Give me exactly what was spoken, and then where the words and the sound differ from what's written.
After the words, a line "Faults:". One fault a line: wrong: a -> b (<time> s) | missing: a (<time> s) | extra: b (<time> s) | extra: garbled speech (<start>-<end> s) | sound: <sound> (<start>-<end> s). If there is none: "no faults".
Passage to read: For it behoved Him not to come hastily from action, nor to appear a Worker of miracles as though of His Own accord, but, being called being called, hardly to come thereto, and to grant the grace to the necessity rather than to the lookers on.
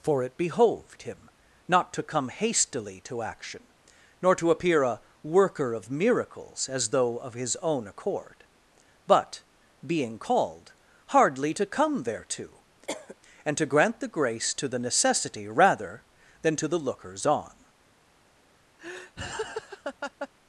For it behoved Him not to come hastily to action, nor to appear a Worker of miracles as though of His Own accord, but, being called, hardly to come thereto, and to grant the grace to the necessity rather than to the lookers on.
Faults:
wrong: from -> to (3.0 s)
missing: being called (10.7 s)
sound: cough (12.9-13.2 s)
sound: laugh (18.8-20.3 s)